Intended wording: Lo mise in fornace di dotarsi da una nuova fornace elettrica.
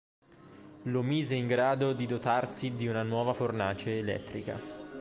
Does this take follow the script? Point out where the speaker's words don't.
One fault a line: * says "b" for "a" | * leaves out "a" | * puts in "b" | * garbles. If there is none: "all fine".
* says "grado" for "fornace"
* says "di" for "da"